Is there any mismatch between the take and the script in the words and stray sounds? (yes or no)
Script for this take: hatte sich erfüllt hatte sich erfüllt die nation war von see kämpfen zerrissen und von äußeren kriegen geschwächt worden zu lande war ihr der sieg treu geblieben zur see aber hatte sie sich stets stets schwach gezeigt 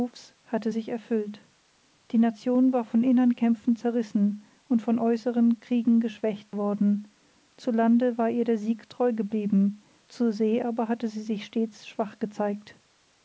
yes